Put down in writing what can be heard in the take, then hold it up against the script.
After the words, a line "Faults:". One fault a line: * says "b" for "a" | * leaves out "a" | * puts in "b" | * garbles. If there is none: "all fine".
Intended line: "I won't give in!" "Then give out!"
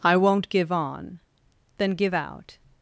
"I won't give on!" "Then give out!"
Faults:
* says "on" for "in"